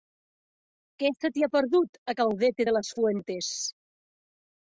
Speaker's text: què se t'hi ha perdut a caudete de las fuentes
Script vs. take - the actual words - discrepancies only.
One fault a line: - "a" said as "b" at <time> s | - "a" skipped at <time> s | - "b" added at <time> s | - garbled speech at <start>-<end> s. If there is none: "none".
none